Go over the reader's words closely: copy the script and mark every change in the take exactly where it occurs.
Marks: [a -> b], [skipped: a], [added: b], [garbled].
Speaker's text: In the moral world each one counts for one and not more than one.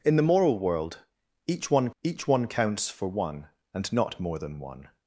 In the moral world each one [added: each one] counts for one and not more than one.